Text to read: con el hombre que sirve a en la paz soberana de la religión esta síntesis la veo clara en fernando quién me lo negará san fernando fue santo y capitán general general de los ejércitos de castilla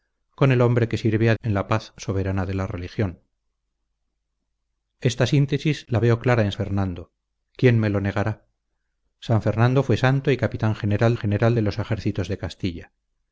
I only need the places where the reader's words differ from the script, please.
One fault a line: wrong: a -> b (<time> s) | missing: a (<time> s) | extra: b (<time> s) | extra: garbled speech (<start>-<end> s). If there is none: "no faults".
no faults